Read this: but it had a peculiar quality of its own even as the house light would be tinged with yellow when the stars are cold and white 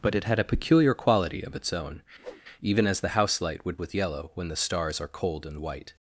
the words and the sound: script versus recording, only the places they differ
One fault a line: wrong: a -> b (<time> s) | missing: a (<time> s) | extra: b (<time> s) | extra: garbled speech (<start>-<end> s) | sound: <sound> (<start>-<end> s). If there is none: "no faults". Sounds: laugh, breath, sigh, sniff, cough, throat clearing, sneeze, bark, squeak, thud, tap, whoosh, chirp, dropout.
sound: whoosh (2.2-2.4 s)
missing: be tinged (3.8 s)